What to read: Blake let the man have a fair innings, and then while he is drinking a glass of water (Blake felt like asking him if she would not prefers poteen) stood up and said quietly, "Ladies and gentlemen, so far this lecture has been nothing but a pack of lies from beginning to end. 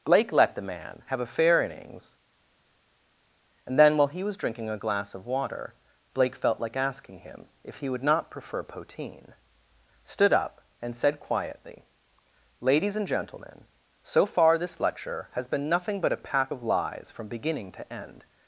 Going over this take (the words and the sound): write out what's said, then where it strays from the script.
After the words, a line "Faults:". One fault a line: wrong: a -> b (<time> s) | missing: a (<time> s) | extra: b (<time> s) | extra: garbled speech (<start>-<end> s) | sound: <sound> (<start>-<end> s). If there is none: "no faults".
Blake let the man have a fair innings, and then while he was drinking a glass of water (Blake felt like asking him if he would not prefer poteen) stood up and said quietly, "Ladies and gentlemen, so far this lecture has been nothing but a pack of lies from beginning to end.
Faults:
wrong: is -> was (4.2 s)
wrong: she -> he (7.8 s)
wrong: prefers -> prefer (8.3 s)